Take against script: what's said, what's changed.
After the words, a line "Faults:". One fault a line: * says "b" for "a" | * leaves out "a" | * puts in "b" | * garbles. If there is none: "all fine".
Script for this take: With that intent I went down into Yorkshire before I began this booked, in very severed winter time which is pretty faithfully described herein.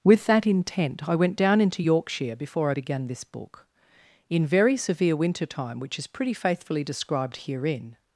With that intent I went down into Yorkshire before I began this book, in very severe winter time which is pretty faithfully described herein.
Faults:
* says "book" for "booked"
* says "severe" for "severed"